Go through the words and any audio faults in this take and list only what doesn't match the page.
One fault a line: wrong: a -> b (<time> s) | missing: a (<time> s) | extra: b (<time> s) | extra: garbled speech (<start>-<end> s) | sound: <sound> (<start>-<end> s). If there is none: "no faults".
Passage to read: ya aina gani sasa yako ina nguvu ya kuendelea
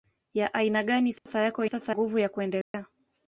sound: dropout (1.2-1.3 s)
wrong: ina -> sasa (1.7 s)
sound: dropout (2.6-2.7 s)